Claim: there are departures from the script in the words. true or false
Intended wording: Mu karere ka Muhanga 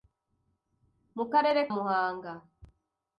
true